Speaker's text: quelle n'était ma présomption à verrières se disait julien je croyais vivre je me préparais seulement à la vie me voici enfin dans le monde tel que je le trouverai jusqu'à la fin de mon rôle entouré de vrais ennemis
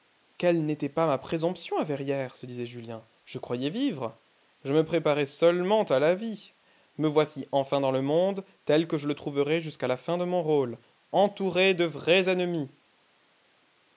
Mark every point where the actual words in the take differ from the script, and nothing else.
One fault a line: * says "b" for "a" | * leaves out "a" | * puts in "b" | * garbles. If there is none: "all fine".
* puts in "pas"